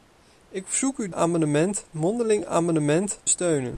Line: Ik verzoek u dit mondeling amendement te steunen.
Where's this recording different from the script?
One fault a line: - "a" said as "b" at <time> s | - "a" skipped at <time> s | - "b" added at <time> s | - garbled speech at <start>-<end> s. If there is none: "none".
- "dit" said as "amendement" at 1.1 s
- "te" skipped at 3.2 s